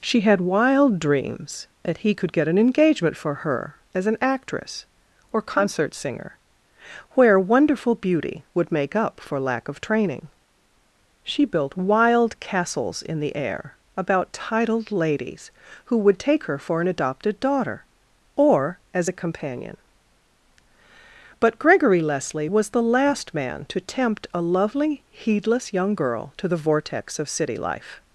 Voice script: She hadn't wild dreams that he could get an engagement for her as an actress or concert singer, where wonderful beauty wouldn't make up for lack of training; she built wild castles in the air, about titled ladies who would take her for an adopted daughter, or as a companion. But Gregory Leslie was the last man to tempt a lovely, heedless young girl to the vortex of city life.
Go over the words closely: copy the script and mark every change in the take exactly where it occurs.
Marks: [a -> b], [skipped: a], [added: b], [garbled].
She [hadn't -> had] wild dreams that he could get an engagement for her as an actress or concert singer, where wonderful beauty [wouldn't -> would] make up for lack of training; she built wild castles in the air, about titled ladies who would take her for an adopted daughter, or as a companion. But Gregory Leslie was the last man to tempt a lovely, heedless young girl to the vortex of city life.